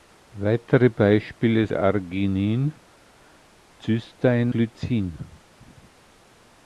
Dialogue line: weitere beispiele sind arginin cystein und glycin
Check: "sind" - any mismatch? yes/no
yes